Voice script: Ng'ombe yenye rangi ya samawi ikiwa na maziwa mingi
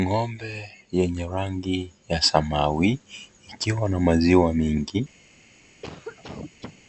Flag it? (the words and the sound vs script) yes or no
yes